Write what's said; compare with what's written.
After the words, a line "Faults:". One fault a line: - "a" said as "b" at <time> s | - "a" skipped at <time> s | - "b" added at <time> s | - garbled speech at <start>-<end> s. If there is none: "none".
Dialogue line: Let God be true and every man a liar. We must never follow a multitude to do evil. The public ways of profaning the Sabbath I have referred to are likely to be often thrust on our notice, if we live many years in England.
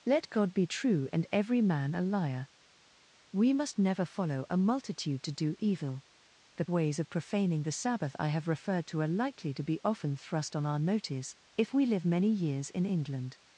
Let God be true and every man a liar. We must never follow a multitude to do evil. The ways of profaning the Sabbath I have referred to are likely to be often thrust on our notice, if we live many years in England.
Faults:
- "public" skipped at 6.7 s